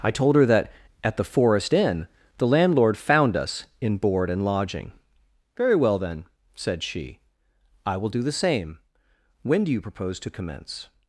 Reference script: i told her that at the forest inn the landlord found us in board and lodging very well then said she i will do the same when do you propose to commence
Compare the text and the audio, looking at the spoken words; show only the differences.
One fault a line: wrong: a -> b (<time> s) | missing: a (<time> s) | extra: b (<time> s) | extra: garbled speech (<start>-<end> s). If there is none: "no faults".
no faults